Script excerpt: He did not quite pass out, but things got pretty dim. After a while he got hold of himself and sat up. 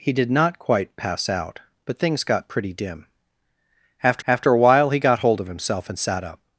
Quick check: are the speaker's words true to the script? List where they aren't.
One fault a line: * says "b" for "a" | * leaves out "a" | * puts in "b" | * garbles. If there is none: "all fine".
* puts in "after"